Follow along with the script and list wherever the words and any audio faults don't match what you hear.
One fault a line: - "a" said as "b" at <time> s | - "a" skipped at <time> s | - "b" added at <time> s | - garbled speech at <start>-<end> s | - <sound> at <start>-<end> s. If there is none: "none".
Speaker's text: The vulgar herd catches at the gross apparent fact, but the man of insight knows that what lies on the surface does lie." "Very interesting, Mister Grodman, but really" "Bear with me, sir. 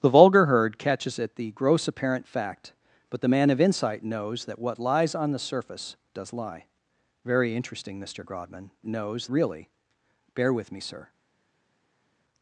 - "but" said as "knows" at 8.9 s